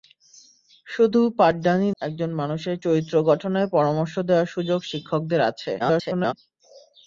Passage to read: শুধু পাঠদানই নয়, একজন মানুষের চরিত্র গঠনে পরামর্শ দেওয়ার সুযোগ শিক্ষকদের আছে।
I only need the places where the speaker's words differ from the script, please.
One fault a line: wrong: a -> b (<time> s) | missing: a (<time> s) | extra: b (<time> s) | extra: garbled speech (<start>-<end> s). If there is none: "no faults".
missing: নয় (1.9 s)
extra: garbled speech (5.8-6.3 s)